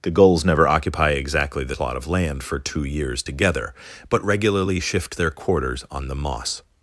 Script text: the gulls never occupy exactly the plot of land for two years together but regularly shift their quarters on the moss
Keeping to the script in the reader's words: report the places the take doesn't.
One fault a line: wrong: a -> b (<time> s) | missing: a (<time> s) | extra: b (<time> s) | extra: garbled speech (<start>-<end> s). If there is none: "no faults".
no faults